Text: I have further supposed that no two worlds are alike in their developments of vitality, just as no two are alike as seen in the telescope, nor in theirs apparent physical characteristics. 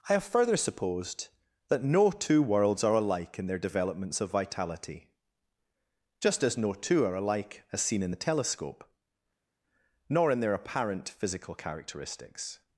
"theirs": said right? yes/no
no